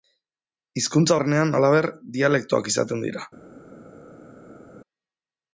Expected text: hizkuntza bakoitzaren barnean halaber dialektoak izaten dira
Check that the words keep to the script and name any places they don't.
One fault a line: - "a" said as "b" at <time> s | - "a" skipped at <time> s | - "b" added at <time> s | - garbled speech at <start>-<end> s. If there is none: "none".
- "bakoitzaren" skipped at 1.2 s